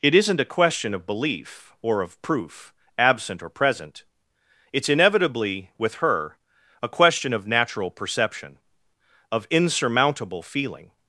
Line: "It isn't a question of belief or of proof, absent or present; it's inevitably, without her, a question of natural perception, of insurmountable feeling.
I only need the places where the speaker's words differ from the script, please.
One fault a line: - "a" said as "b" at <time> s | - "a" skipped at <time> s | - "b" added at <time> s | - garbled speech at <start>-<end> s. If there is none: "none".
- "without" said as "with" at 5.8 s